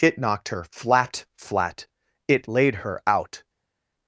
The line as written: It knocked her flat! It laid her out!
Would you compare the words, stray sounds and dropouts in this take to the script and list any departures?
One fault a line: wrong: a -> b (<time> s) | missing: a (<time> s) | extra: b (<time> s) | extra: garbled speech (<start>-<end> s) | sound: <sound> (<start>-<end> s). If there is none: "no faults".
extra: flat (1.4 s)